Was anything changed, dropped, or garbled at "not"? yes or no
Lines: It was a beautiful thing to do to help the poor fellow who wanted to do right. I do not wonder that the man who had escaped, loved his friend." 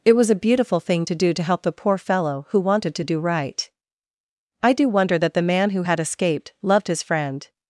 yes